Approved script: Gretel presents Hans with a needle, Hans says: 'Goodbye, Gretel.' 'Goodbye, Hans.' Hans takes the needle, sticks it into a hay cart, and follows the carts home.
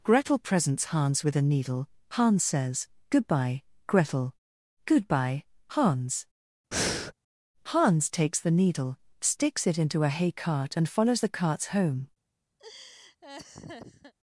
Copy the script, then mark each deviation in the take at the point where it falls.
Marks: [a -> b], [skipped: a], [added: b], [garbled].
Gretel presents Hans with a needle, Hans says: 'Goodbye, Gretel.' 'Goodbye, Hans.' Hans takes the needle, sticks it into a hay cart, and follows the carts home.